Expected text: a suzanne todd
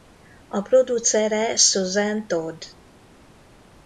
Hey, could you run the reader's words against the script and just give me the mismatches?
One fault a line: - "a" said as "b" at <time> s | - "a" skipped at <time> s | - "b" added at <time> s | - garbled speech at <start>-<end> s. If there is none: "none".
- "producere" added at 0.6 s